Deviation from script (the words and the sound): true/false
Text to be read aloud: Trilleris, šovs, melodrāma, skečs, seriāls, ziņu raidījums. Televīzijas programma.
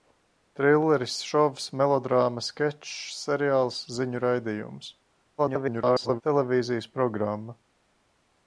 true